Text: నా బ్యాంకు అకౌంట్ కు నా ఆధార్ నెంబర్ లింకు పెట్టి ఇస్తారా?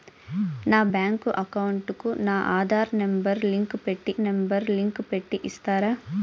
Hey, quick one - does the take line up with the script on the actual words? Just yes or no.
no